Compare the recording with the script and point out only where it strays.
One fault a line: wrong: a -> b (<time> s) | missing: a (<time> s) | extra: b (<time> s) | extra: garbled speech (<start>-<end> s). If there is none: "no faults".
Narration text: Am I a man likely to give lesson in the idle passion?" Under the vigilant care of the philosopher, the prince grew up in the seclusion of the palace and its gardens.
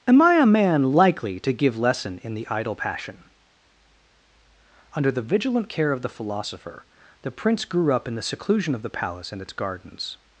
no faults